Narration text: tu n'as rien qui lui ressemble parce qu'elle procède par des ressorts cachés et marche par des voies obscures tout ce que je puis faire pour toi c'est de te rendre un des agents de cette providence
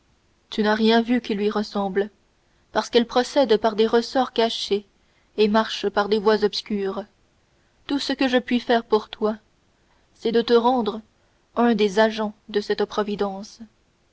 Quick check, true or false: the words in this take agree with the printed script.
false